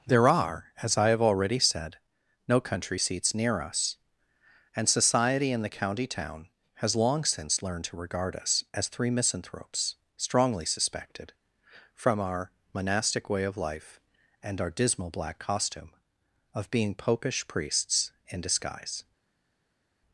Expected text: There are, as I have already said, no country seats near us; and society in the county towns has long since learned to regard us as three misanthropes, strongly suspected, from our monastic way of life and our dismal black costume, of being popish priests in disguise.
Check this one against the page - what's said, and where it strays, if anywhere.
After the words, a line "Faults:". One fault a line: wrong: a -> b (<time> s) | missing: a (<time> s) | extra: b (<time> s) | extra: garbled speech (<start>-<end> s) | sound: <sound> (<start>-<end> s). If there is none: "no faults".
There are, as I have already said, no country seats near us; and society in the county town has long since learned to regard us as three misanthropes, strongly suspected, from our monastic way of life and our dismal black costume, of being popish priests in disguise.
Faults:
wrong: towns -> town (6.1 s)